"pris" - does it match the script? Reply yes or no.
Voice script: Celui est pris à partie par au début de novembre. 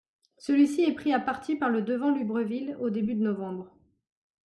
yes